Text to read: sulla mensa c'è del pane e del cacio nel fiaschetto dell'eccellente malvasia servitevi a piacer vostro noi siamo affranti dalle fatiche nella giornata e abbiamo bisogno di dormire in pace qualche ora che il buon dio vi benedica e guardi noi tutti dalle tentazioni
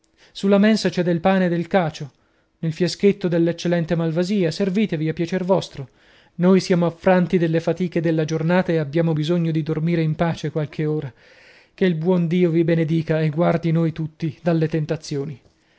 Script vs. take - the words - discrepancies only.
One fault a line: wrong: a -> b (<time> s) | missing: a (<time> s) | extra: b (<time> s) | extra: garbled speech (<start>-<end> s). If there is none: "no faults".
wrong: nella -> della (8.0 s)